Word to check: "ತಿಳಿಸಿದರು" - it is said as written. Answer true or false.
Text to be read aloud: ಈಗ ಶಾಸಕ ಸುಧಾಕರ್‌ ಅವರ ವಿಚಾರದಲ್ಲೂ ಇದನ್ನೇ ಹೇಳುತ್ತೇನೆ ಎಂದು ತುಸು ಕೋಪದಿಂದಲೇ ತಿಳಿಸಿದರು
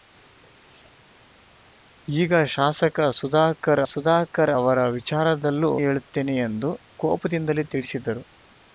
true